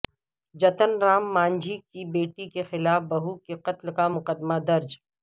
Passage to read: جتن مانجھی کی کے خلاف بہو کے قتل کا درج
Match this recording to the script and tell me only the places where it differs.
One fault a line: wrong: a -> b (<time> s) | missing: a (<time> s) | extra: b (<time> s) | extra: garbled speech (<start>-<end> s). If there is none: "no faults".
extra: رام (1.0 s)
extra: بیٹی (2.1 s)
extra: مقدمہ (4.2 s)